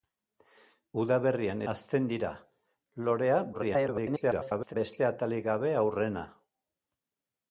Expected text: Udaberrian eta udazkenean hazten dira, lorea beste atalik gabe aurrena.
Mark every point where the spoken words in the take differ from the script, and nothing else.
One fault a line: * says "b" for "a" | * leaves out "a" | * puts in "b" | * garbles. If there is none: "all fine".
* leaves out "eta udazkenean"
* garbles